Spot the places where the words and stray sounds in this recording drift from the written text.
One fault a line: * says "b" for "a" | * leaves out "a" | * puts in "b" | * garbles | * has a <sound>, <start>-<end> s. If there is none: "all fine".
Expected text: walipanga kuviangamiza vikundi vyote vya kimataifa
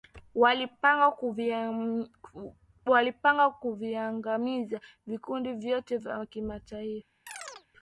* has a chirp, 7.3-7.7 s